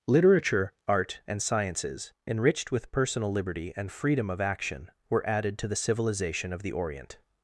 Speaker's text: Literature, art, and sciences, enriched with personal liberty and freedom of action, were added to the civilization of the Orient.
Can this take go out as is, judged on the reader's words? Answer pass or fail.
pass